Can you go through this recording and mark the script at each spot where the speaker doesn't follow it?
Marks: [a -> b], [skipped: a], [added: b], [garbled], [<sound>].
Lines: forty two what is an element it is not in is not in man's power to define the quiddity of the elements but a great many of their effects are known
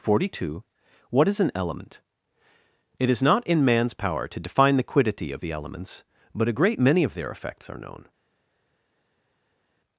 forty two what is an element it is not in [skipped: is not in] man's power to define the quiddity of the elements but a great many of their effects are known